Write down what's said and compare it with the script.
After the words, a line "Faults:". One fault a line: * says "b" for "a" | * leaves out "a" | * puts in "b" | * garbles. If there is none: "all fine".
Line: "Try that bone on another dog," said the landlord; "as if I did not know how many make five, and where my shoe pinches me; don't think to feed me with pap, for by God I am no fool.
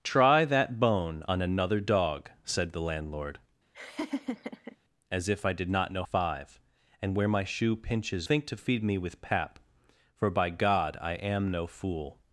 "Try that bone on another dog," said the landlord; "as if I did not know five, and where my shoe pinches think to feed me with pap, for by God I am no fool.
Faults:
* leaves out "how many make"
* leaves out "me don't"